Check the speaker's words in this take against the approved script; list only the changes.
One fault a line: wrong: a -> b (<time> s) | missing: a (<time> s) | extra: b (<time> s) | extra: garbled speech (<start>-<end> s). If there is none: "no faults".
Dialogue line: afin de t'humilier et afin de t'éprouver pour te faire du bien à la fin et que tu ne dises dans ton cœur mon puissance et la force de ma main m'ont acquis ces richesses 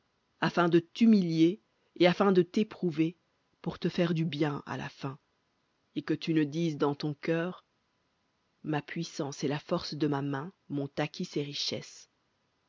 wrong: mon -> ma (8.6 s)